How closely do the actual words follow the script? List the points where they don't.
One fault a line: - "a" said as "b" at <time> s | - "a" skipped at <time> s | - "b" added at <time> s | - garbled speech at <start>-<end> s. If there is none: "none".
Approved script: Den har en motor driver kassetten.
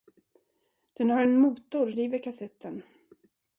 none